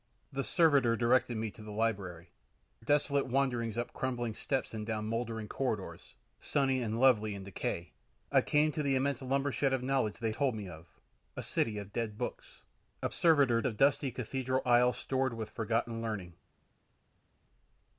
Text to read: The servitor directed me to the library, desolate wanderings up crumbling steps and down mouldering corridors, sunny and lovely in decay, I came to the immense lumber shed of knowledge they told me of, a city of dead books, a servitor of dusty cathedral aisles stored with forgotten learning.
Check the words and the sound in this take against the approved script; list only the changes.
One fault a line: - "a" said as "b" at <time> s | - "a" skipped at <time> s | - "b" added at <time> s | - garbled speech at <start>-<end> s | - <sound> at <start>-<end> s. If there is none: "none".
none